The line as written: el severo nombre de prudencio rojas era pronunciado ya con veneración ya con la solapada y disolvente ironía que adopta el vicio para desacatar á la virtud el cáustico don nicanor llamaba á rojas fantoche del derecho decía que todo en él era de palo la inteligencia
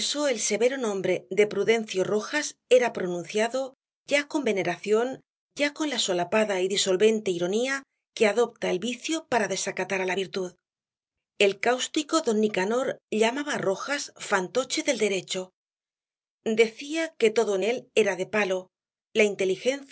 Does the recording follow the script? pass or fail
pass